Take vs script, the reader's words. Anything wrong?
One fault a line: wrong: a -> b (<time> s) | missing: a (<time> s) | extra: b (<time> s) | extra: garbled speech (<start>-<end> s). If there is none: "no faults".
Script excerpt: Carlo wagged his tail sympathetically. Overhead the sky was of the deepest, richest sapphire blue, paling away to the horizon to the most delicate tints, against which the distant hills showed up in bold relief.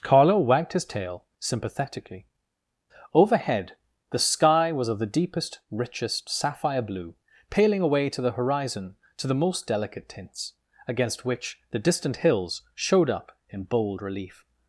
no faults